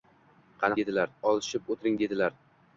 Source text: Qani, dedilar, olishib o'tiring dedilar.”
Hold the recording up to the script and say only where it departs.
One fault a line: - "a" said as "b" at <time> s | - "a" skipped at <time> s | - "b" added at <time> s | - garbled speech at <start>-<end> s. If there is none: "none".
none